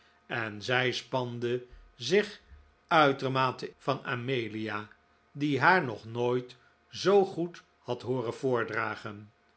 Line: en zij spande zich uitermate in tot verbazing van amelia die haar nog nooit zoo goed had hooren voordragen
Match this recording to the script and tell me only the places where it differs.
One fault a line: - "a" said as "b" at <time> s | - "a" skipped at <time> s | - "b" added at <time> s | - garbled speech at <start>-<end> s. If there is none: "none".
- "in tot verbazing" skipped at 3.7 s